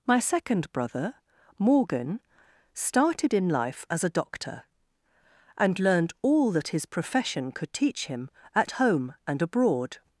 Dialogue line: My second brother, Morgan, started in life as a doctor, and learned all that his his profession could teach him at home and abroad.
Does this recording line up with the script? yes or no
no